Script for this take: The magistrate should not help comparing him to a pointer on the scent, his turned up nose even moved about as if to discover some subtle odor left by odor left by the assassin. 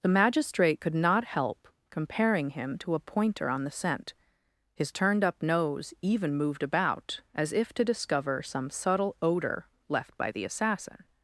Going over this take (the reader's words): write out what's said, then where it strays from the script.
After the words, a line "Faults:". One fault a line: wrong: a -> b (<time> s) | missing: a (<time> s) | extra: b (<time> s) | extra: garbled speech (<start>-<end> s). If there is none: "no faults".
The magistrate could not help comparing him to a pointer on the scent, his turned up nose even moved about as if to discover some subtle odor left by the assassin.
Faults:
wrong: should -> could (0.8 s)
missing: odor left by (10.3 s)